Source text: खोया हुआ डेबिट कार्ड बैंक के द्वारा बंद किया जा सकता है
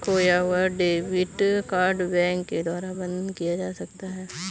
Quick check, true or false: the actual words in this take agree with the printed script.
true